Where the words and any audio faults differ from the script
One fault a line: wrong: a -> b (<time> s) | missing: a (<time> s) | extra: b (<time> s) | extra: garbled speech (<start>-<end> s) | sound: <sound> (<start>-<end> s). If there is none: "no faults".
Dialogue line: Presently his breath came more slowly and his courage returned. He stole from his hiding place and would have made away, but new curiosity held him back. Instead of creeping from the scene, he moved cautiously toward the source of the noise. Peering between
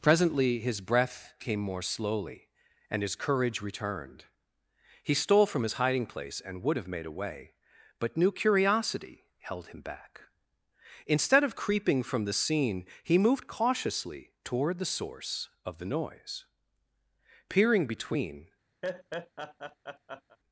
sound: laugh (18.8-20.4 s)